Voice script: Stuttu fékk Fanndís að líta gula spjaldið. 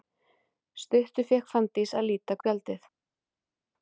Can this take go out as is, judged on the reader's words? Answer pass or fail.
fail